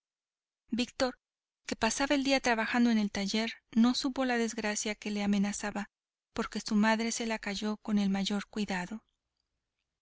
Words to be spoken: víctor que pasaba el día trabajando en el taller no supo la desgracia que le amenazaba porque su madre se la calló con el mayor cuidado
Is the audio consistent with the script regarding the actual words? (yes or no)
yes